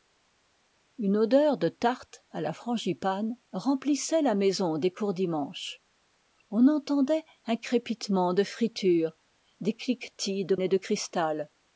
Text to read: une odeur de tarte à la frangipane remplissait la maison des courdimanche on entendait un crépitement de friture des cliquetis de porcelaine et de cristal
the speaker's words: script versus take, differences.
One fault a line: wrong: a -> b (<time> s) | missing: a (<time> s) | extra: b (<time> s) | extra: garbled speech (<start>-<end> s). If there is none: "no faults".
missing: porcelaine (10.6 s)